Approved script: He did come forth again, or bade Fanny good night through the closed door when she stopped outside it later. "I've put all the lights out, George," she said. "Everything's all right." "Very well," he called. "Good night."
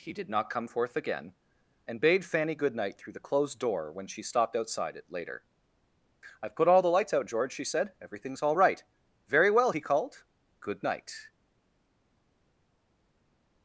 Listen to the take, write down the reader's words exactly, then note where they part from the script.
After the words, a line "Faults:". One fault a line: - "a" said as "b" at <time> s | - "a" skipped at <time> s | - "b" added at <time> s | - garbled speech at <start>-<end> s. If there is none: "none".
He did not come forth again, and bade Fanny good night through the closed door when she stopped outside it later. "I've put all the lights out, George," she said. "Everything's all right." "Very well," he called. "Good night."
Faults:
- "not" added at 0.3 s
- "or" said as "and" at 1.9 s